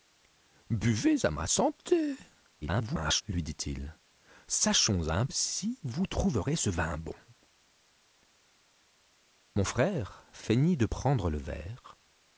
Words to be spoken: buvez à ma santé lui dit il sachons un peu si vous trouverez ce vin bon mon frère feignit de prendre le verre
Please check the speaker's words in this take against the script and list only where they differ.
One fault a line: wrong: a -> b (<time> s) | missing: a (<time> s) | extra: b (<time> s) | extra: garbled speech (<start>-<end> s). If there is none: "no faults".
extra: garbled speech (2.6-3.2 s)
missing: peu (5.3 s)